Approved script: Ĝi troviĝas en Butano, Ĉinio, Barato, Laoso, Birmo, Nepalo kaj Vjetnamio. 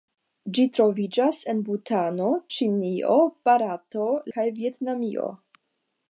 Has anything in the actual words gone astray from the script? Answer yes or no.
yes